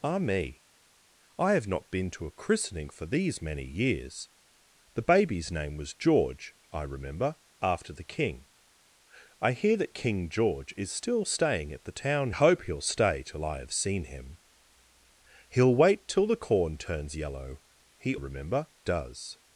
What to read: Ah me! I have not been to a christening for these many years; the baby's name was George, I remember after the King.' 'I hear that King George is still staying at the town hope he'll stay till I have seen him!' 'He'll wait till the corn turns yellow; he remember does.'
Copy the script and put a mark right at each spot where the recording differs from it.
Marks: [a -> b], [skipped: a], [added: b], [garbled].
Ah me! I have not been to a christening for these many years; the baby's name was George, I remember after the King.' 'I hear that King George is still staying at the town hope he'll stay till I have seen him!' 'He'll wait till the corn turns yellow; he remember does.'